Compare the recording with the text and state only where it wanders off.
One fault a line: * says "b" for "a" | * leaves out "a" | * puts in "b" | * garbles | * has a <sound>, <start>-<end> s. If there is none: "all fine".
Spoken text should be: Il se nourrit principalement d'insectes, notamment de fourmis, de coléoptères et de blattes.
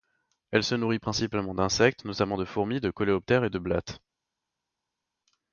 * says "Elle" for "Il"